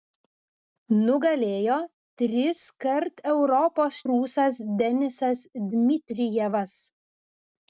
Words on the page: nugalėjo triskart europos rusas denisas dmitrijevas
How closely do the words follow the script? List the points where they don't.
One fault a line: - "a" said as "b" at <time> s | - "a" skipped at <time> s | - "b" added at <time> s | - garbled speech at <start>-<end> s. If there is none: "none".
none